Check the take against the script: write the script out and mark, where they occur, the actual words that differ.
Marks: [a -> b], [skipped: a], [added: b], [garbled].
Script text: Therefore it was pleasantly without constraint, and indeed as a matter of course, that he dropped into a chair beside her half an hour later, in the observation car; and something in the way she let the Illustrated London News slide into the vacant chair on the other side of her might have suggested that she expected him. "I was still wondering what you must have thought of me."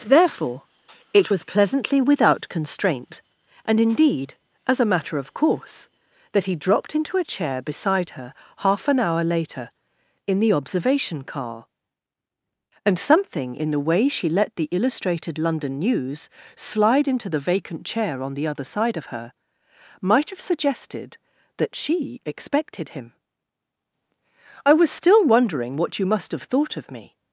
Therefore it was pleasantly without constraint, and indeed as a matter of course, that he dropped into a chair beside her half an hour later, in the observation car; and something in the way she let the Illustrated London News slide into the vacant chair on the other side of her might have suggested that she expected him. "I was still wondering what you must have thought of me."